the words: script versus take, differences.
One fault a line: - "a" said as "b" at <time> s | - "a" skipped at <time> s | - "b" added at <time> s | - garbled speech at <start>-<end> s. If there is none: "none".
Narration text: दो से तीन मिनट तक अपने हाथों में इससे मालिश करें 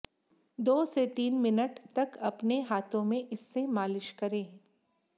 none